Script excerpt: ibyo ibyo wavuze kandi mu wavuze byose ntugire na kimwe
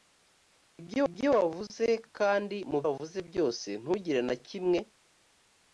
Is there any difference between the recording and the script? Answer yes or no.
no